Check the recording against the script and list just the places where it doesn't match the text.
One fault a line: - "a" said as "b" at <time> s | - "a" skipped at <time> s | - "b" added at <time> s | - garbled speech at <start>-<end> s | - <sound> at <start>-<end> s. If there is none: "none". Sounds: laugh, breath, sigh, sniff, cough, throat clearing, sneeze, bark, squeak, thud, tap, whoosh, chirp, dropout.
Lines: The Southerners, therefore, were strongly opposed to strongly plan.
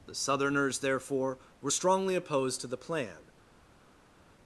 - "strongly" said as "the" at 2.7 s